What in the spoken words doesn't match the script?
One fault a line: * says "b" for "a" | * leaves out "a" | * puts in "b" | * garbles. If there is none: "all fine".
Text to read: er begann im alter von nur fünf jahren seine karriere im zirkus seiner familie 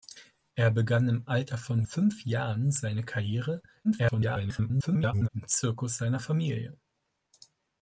* leaves out "nur"
* garbles